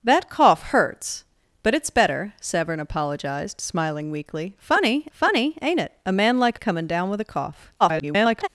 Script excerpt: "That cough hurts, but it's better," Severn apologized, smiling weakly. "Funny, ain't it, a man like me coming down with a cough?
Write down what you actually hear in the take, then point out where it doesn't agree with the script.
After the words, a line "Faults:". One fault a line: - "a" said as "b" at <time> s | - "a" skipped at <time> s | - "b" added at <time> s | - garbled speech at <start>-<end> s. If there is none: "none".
"That cough hurts, but it's better," Severn apologized, smiling weakly. "Funny funny, ain't it, a man like coming down with a cough? [garbled]
Faults:
- "funny" added at 5.1 s
- "me" skipped at 6.6 s
- garbled speech at 7.8-8.5 s